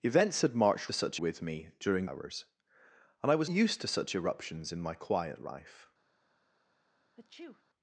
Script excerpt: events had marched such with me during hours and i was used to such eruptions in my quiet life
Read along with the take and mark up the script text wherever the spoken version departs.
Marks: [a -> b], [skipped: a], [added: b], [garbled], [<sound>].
events had marched such with me during hours and i was used to such eruptions in my quiet life [sneeze]